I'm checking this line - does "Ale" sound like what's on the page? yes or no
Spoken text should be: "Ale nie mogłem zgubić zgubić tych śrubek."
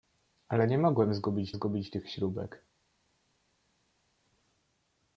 yes